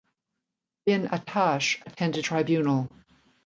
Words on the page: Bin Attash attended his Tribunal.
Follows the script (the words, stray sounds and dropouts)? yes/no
no